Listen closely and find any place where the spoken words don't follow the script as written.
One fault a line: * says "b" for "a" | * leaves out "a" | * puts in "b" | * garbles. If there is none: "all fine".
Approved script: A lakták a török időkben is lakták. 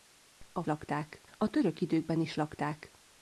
all fine